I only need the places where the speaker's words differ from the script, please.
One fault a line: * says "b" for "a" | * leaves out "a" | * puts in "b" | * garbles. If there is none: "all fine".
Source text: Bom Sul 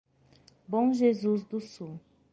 * puts in "Jesus do"